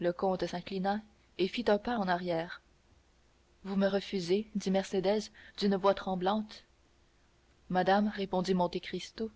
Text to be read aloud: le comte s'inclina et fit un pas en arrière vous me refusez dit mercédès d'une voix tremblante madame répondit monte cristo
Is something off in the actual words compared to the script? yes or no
no